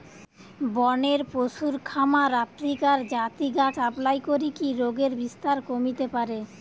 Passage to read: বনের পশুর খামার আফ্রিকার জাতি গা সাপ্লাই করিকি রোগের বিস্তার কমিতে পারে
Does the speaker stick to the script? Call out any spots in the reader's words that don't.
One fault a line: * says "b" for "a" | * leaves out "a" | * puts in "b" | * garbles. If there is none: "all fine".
all fine